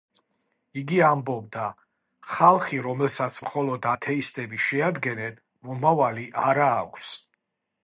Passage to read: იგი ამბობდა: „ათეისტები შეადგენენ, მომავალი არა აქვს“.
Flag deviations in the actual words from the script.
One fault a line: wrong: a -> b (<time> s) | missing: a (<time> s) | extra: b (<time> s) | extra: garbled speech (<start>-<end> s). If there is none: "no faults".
extra: ხალხი რომელსაც მხოლოდ (2.4 s)